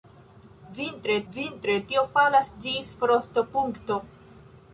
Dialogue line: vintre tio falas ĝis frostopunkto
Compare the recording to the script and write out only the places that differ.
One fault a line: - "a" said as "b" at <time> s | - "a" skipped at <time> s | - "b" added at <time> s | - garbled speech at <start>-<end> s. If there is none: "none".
- "vintre" added at 1.4 s